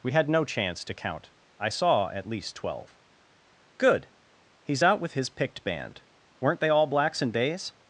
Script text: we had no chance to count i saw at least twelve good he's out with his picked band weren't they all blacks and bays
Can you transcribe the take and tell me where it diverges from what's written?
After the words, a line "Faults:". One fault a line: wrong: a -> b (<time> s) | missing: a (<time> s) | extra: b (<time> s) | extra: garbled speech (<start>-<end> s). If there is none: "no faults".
we had no chance to count i saw at least twelve good he's out with his picked band weren't they all blacks and days
Faults:
wrong: bays -> days (7.3 s)